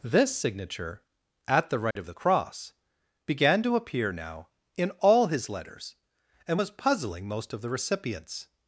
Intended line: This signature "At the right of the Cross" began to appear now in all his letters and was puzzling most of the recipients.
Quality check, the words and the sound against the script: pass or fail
fail